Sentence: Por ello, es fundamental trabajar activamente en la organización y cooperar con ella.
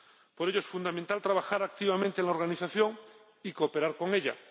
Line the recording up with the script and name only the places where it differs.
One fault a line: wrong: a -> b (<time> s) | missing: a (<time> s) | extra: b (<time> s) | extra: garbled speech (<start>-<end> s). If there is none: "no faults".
no faults